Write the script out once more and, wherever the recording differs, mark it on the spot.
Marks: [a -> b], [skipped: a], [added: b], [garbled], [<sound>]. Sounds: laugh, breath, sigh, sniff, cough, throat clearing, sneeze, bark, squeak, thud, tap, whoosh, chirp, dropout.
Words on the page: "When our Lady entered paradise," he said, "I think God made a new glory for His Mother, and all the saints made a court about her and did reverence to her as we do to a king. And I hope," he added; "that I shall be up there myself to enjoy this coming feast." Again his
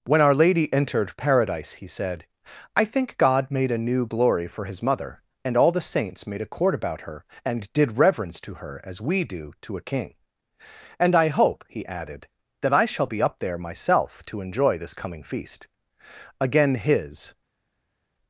"When our Lady entered paradise," he said, "I think God made a new glory for His Mother, and all the saints made a court about her and did reverence to her as we do to a king. And I hope," he added; "that I shall be up there myself to enjoy this coming feast." Again his